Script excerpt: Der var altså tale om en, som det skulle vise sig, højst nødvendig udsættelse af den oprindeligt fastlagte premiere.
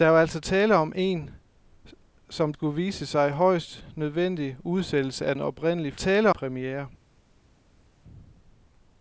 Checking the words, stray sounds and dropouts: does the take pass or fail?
fail